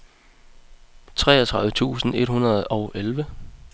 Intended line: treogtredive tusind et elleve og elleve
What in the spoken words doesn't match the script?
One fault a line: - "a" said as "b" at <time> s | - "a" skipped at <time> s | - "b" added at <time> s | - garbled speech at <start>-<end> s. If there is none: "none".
- "elleve" said as "hundrede" at 2.3 s